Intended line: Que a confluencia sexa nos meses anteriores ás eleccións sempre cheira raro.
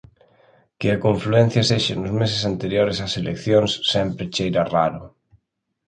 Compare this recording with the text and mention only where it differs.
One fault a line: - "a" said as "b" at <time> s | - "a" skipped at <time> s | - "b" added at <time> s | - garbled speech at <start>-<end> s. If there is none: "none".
none